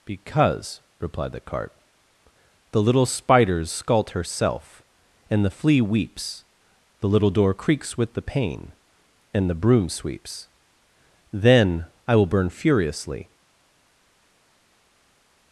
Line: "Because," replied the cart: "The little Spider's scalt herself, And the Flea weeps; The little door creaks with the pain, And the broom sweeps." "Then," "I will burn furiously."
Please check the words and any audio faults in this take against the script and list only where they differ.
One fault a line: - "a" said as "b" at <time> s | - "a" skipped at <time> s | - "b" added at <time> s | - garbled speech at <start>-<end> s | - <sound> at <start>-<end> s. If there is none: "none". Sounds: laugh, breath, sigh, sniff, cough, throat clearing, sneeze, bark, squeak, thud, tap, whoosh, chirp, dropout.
none